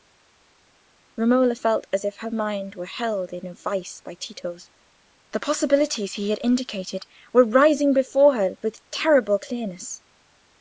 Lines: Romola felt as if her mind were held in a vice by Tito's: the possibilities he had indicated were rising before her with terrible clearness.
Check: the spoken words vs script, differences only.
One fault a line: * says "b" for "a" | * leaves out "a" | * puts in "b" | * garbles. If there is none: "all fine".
all fine